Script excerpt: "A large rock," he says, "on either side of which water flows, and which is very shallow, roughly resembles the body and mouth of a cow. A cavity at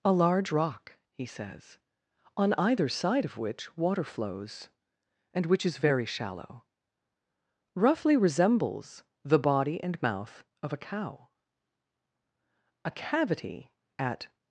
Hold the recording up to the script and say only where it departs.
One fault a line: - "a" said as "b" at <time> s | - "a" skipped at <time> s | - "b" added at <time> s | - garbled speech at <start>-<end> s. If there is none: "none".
none